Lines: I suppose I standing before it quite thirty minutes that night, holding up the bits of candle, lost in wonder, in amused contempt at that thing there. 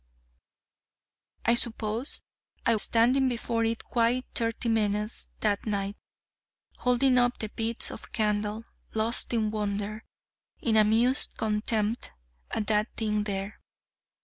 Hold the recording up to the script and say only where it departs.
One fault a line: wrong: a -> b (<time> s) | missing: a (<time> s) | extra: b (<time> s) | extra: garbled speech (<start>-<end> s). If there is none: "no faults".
no faults